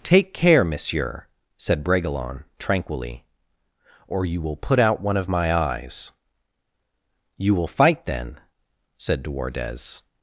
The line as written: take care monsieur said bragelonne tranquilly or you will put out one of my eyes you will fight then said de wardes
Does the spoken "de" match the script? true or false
true